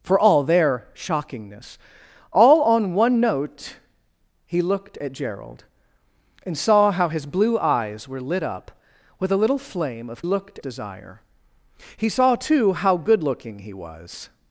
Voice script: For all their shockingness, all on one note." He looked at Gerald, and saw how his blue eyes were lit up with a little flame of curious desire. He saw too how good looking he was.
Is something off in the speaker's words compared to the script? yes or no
yes